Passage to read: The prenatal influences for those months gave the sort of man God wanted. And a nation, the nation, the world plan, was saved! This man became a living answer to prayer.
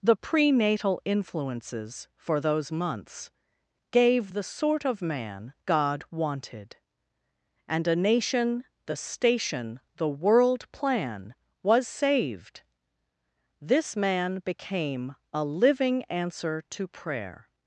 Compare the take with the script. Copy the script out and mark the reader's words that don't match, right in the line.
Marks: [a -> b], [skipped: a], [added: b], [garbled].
The prenatal influences for those months gave the sort of man God wanted. And a nation, the [nation, -> station] the world plan, was saved! This man became a living answer to prayer.